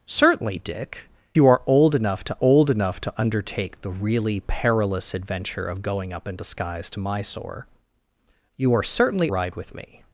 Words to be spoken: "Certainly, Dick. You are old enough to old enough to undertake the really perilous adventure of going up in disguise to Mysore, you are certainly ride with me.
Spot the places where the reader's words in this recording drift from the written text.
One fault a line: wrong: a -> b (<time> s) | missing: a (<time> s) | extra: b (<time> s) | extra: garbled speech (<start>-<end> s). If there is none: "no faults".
no faults